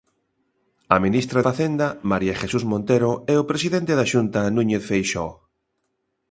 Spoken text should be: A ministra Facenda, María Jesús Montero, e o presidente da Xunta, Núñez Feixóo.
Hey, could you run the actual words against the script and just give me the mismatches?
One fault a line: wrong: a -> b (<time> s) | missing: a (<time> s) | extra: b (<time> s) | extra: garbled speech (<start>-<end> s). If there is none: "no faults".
no faults